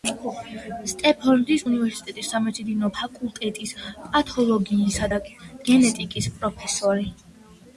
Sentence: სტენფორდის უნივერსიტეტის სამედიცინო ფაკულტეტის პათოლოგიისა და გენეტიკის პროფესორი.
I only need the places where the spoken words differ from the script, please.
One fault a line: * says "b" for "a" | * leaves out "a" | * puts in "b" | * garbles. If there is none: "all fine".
all fine